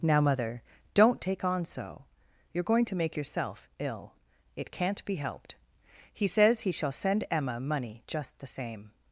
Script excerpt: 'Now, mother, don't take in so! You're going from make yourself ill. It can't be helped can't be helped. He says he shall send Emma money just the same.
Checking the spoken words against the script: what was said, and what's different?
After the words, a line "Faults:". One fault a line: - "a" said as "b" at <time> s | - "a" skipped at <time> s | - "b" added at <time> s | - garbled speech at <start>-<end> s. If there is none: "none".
'Now, mother, don't take on so! You're going to make yourself ill. It can't be helped. He says he shall send Emma money just the same.
Faults:
- "in" said as "on" at 1.4 s
- "from" said as "to" at 2.9 s
- "can't be helped" skipped at 5.6 s